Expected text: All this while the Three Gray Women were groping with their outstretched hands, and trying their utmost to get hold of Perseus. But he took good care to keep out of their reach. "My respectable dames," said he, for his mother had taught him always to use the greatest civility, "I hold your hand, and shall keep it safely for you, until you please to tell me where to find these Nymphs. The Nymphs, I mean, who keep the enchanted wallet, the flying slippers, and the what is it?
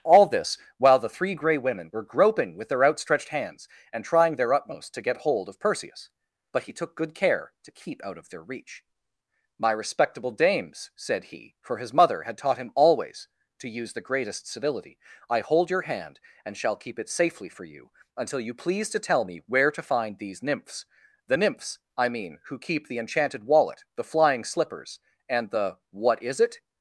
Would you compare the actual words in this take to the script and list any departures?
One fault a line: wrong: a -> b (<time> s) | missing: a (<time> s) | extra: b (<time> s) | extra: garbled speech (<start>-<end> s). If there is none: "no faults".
no faults